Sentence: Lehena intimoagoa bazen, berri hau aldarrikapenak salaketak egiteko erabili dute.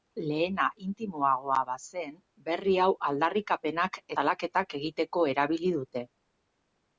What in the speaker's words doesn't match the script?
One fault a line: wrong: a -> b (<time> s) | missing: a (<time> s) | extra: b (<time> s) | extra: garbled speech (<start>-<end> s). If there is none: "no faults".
no faults